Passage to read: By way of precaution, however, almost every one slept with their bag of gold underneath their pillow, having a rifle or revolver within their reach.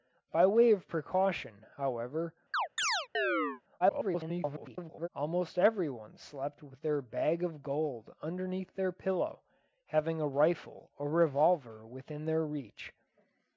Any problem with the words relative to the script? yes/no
yes